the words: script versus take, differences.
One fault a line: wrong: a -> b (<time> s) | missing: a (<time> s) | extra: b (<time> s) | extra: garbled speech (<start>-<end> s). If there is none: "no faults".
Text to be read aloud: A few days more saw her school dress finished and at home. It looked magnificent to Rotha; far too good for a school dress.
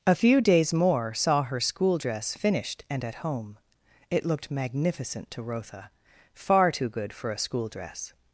no faults